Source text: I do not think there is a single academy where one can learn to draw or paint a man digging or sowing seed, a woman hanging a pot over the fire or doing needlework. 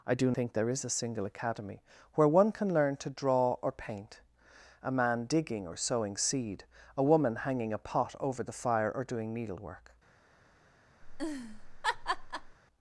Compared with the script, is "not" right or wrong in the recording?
wrong